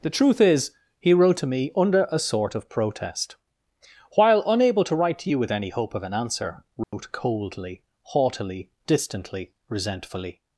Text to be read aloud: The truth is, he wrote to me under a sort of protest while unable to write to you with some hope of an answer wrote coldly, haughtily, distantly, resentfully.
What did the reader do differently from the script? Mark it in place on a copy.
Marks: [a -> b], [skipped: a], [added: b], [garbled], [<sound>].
The truth is, he wrote to me under a sort of protest while unable to write to you with [some -> any] hope of an answer wrote [dropout] coldly, haughtily, distantly, resentfully.